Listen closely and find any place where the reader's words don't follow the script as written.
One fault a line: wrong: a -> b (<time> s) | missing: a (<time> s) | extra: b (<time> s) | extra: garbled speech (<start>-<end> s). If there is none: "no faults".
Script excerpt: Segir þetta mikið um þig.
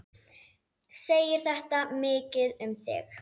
no faults